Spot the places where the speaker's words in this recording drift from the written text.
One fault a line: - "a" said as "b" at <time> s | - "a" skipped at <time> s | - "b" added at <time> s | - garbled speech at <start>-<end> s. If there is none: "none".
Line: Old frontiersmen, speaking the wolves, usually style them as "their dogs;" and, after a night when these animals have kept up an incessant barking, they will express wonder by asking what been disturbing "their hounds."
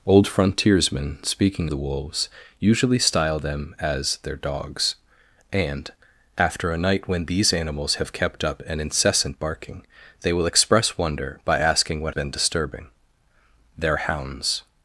none